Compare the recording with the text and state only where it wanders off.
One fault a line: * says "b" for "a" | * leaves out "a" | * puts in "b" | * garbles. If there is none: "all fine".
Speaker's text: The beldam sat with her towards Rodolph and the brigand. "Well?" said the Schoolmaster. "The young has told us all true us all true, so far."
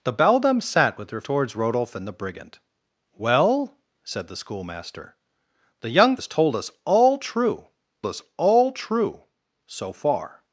all fine